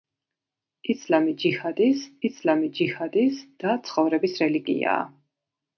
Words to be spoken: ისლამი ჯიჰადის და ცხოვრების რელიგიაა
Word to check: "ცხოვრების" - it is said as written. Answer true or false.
true